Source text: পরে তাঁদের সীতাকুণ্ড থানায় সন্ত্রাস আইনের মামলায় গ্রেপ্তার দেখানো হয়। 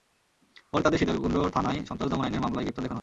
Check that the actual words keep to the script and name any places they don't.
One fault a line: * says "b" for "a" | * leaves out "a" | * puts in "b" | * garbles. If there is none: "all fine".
* puts in "দমন"